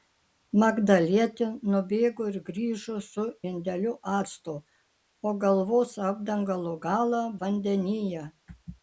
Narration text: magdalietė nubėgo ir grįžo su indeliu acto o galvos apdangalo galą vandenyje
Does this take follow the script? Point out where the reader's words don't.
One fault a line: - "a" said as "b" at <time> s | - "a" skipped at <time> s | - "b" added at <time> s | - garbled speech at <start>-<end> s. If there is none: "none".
none